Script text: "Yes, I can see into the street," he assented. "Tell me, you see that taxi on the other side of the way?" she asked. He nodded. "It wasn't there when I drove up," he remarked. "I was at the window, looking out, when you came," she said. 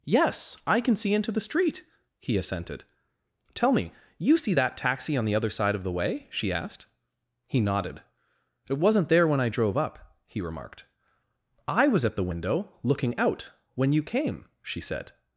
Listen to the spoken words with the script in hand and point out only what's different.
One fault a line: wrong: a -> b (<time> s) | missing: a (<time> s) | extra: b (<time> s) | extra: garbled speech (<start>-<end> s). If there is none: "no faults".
no faults